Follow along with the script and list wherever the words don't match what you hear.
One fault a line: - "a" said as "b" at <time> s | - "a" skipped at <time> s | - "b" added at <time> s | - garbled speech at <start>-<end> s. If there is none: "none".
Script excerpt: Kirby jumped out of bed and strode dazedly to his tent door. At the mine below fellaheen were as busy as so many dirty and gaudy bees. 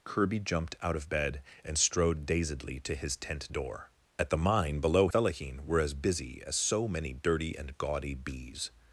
none